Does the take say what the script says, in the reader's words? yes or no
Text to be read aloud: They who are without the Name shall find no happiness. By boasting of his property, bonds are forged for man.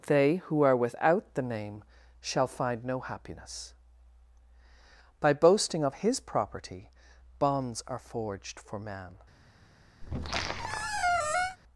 yes